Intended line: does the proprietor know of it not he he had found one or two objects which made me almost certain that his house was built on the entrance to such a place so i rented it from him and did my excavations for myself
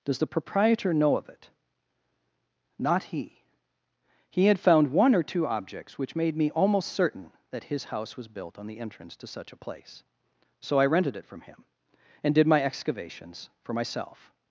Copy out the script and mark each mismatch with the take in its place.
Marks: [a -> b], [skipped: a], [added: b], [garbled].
does the proprietor know of it not he he had found one or two objects which made me almost certain that his house was built on the entrance to such a place so i rented it from him and did my excavations for myself